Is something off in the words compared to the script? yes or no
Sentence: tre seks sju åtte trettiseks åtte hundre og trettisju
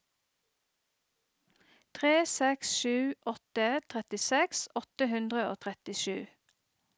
no